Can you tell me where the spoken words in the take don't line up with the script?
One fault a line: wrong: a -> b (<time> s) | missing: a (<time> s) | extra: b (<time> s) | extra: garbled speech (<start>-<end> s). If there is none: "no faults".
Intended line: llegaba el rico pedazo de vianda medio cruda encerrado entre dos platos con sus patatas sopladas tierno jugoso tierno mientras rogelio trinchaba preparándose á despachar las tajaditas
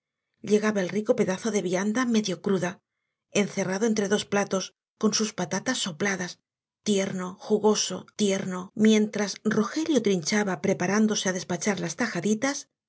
no faults